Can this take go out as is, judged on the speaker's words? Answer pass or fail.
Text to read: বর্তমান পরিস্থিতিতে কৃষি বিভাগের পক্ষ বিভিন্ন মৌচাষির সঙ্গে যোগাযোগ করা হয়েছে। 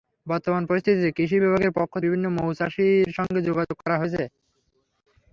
pass